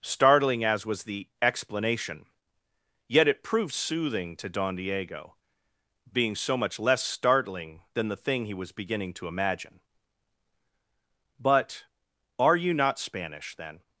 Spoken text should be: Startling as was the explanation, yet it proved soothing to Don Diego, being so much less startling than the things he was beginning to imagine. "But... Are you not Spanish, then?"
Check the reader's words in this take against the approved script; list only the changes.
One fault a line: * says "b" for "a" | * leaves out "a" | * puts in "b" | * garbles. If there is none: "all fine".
* says "thing" for "things"